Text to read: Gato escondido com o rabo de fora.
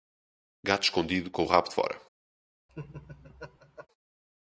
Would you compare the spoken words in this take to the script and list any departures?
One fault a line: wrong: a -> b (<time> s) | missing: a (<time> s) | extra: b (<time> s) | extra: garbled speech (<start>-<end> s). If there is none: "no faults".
no faults